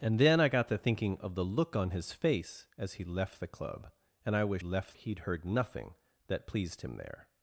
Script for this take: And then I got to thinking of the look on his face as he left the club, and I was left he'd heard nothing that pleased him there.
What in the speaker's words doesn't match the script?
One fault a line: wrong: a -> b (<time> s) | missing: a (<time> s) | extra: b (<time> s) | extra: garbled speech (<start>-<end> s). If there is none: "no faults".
no faults